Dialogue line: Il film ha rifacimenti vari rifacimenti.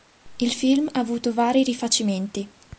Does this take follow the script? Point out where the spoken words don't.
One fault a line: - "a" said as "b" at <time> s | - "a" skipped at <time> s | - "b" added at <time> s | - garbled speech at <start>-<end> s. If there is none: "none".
- "rifacimenti" said as "avuto" at 1.0 s